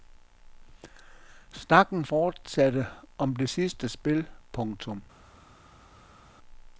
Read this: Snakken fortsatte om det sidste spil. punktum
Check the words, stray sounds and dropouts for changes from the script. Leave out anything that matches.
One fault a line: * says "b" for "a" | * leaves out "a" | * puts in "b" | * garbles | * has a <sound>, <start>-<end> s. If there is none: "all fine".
all fine